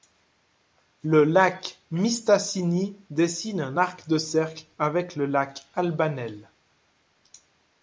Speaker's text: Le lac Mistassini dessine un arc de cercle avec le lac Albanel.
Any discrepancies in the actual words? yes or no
no